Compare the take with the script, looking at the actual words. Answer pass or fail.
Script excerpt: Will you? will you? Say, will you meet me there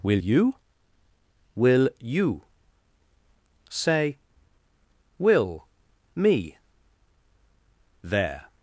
fail